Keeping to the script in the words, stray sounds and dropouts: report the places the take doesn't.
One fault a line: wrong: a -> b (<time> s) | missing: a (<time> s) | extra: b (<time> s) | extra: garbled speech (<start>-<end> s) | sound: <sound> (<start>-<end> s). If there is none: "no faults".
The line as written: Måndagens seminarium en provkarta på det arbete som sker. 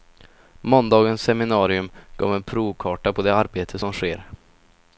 extra: gav (2.2 s)